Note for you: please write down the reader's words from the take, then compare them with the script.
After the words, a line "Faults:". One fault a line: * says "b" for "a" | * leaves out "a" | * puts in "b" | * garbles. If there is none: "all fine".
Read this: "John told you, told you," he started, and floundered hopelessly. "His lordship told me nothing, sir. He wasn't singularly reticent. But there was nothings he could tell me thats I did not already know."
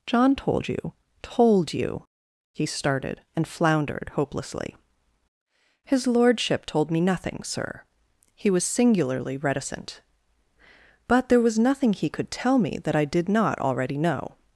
"John told you, told you," he started, and floundered hopelessly. "His lordship told me nothing, sir. He was singularly reticent. But there was nothing he could tell me that I did not already know."
Faults:
* says "was" for "wasn't"
* says "nothing" for "nothings"
* says "that" for "thats"